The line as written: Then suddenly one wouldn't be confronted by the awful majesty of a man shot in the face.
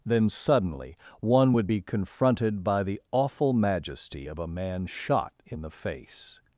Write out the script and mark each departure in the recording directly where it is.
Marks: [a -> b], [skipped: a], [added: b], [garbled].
Then suddenly one [wouldn't -> would] be confronted by the awful majesty of a man shot in the face.